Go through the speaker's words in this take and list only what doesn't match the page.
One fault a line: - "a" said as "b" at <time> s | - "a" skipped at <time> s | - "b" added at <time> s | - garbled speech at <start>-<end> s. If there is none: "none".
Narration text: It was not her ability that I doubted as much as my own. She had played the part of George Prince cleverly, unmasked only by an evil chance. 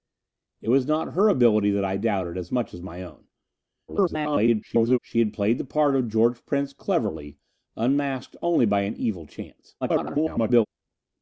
- garbled speech at 3.9-5.0 s
- garbled speech at 9.8-10.7 s